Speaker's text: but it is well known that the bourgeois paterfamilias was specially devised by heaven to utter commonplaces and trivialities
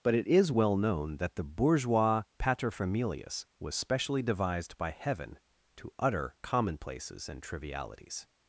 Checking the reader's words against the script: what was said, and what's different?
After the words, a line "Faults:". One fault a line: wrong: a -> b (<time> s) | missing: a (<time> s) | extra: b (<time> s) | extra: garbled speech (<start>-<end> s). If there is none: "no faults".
but it is well known that the bourgeois paterfamilias was specially devised by heaven to utter commonplaces and trivialities
Faults:
no faults